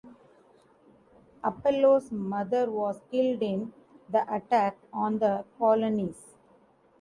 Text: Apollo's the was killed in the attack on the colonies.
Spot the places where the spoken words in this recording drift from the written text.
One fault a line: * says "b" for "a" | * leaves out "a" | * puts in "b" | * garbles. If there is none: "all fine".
* says "mother" for "the"